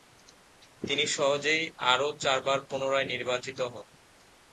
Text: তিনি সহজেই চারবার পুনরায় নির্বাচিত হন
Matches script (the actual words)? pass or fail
fail